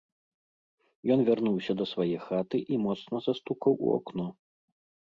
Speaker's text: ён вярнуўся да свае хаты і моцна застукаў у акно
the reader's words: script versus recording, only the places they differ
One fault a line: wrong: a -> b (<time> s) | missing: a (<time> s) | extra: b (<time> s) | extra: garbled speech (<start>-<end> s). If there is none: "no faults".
no faults